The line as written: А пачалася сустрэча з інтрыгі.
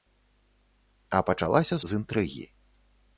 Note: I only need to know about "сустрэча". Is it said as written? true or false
false